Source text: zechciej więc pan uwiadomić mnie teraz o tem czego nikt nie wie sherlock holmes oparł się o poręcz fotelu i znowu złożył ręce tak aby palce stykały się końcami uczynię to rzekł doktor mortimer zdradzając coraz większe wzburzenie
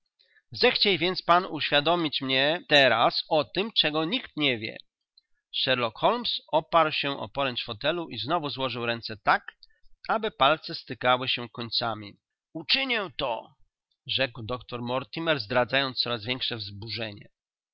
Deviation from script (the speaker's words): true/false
false